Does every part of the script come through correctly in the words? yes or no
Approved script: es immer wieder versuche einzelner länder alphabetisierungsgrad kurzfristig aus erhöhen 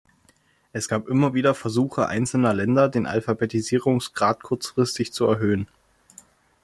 no